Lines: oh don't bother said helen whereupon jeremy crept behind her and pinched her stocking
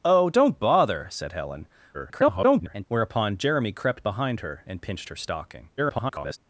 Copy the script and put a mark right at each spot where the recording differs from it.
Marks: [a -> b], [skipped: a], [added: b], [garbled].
oh don't bother said helen [garbled] whereupon jeremy crept behind her and pinched her stocking [garbled]